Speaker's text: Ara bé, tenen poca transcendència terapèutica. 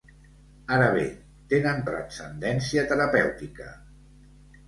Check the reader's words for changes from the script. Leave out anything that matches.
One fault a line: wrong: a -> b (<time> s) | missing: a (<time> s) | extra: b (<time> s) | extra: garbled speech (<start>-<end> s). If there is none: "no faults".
missing: poca (1.8 s)